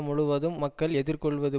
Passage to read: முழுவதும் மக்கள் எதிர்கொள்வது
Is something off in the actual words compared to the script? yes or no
no